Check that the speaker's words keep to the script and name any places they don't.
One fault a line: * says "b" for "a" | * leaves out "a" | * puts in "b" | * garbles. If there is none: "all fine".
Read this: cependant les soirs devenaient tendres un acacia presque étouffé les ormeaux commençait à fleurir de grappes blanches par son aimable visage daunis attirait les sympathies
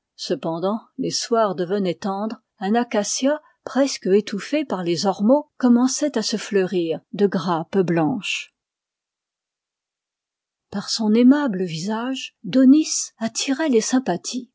* puts in "par"
* puts in "se"